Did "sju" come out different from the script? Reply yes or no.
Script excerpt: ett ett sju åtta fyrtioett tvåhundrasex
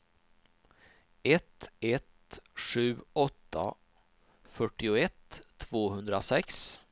no